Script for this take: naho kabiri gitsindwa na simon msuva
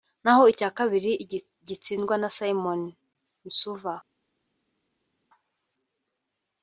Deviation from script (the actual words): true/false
true